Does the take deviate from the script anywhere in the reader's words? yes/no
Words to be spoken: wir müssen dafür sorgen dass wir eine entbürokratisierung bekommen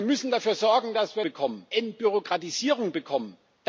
yes